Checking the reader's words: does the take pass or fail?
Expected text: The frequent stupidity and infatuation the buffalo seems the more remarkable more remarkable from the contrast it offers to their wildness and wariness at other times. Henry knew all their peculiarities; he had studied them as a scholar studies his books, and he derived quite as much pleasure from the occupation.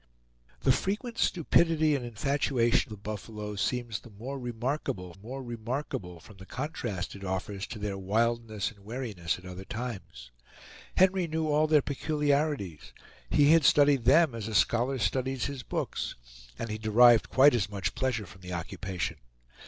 pass